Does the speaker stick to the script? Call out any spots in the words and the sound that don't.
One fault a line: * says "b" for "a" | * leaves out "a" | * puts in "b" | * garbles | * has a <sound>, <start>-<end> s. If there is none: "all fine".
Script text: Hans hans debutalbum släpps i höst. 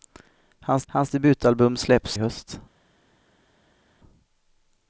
all fine